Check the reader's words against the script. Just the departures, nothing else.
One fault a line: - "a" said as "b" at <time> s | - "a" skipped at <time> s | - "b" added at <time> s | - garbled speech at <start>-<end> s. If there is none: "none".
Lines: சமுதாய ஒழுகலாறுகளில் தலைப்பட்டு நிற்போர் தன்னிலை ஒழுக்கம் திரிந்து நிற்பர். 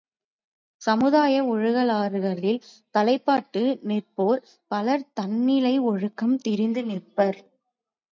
- "பலர்" added at 4.7 s